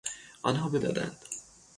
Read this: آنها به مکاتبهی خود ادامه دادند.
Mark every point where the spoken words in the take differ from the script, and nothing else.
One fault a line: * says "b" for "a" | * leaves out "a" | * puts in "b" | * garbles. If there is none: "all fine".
* leaves out "مکاتبهی خود ادامه"